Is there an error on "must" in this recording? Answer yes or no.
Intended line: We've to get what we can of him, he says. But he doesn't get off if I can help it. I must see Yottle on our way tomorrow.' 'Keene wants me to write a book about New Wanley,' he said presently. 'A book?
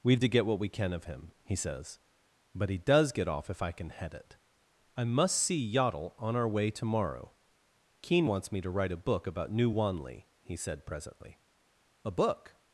no